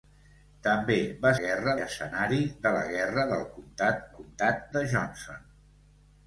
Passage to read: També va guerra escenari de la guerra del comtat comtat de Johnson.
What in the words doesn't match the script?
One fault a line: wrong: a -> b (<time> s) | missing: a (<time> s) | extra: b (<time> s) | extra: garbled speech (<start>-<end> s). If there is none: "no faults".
no faults